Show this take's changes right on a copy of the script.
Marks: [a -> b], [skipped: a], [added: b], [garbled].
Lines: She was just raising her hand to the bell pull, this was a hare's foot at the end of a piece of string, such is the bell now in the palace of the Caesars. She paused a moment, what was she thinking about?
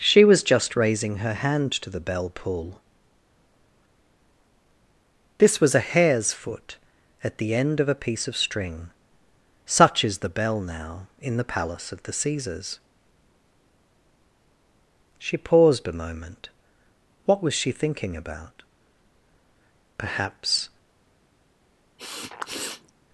She was just raising her hand to the bell pull, this was a hare's foot at the end of a piece of string, such is the bell now in the palace of the Caesars. She paused a moment, what was she thinking about? [added: Perhaps]